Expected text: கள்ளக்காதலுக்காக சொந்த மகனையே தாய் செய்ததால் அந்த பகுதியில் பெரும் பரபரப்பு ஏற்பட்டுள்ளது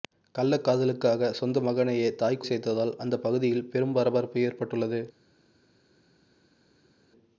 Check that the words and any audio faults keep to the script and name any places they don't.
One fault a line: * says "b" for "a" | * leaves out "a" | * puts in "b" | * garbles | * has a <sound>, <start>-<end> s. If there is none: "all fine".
all fine